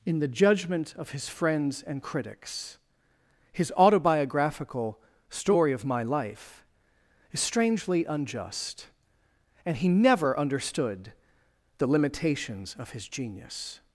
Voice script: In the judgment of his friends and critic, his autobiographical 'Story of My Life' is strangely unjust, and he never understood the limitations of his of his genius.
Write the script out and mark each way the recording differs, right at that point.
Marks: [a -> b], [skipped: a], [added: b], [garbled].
In the judgment of his friends and [critic, -> critics] his autobiographical 'Story of My Life' is strangely unjust, and he never understood the limitations of his [skipped: of his] genius.